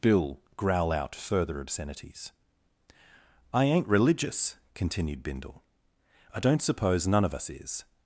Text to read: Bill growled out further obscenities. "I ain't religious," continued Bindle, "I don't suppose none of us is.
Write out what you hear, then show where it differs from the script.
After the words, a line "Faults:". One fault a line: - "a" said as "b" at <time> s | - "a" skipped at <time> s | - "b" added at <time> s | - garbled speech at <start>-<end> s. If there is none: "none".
Bill growl out further obscenities. "I ain't religious," continued Bindle, "I don't suppose none of us is.
Faults:
- "growled" said as "growl" at 0.6 s